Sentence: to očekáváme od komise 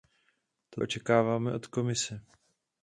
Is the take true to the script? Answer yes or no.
yes